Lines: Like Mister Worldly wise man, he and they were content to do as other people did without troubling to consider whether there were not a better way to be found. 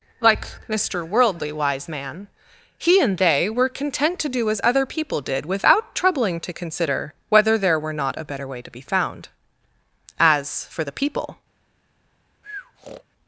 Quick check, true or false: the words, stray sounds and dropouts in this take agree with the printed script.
false